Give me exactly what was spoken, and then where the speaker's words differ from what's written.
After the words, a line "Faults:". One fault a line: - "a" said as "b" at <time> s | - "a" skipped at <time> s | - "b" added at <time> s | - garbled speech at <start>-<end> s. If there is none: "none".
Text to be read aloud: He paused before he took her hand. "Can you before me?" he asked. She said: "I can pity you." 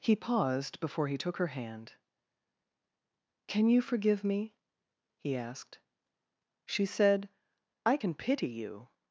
He paused before he took her hand. "Can you forgive me?" he asked. She said: "I can pity you."
Faults:
- "before" said as "forgive" at 3.8 s